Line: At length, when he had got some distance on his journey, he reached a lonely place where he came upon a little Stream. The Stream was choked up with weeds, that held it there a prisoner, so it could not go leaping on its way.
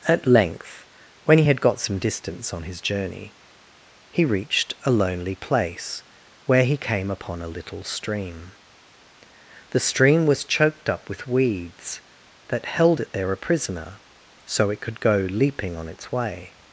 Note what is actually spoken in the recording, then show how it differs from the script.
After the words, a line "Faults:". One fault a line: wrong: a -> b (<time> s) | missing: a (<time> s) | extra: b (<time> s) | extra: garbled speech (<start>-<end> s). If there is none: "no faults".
At length, when he had got some distance on his journey, he reached a lonely place where he came upon a little Stream. The Stream was choked up with weeds, that held it there a prisoner, so it could go leaping on its way.
Faults:
missing: not (15.0 s)